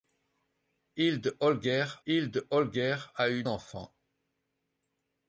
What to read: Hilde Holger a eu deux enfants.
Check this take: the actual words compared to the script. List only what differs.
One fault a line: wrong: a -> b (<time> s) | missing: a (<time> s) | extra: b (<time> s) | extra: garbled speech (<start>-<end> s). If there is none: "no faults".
extra: hilde Holger (2.0 s)
missing: deux (3.4 s)